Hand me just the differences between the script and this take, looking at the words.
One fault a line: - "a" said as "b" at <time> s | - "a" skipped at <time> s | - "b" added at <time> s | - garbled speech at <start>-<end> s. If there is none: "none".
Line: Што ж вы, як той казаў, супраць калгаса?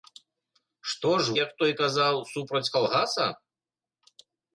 - "вы" skipped at 1.4 s